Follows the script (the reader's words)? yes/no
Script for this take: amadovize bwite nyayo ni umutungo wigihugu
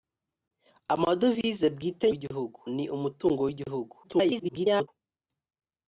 no